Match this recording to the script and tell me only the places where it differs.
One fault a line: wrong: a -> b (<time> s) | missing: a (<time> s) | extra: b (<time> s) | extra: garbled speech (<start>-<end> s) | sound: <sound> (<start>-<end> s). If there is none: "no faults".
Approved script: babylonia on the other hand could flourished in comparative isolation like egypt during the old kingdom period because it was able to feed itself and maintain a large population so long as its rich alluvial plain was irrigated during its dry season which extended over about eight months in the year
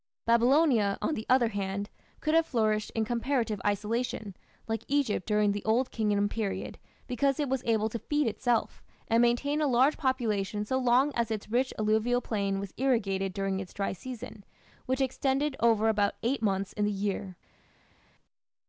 extra: have (2.3 s)